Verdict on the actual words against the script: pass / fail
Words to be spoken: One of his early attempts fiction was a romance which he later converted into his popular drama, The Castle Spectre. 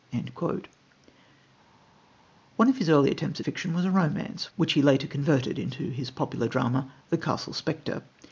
pass